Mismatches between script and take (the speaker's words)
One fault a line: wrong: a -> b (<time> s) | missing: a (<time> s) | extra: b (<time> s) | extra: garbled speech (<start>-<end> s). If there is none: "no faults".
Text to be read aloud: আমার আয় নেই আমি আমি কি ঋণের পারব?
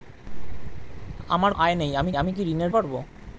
no faults